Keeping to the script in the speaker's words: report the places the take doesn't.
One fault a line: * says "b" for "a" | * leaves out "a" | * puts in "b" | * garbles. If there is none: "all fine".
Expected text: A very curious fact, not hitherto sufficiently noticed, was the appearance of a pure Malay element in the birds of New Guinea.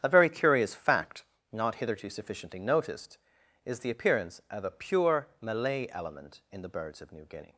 * says "is" for "was"